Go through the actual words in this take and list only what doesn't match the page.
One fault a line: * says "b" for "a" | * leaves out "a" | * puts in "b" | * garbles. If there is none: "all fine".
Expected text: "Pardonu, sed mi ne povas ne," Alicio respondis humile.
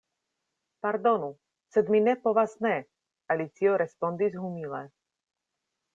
all fine